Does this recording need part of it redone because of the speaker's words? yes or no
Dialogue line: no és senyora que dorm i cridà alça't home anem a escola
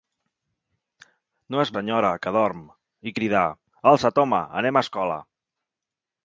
no